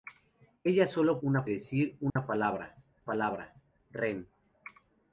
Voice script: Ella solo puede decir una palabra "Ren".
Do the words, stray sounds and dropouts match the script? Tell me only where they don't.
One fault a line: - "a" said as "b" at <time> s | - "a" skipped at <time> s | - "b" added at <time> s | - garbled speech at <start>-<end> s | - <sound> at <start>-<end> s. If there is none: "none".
- "puede" said as "una" at 1.2 s
- dropout at 2.1-2.2 s
- "palabra" added at 3.0 s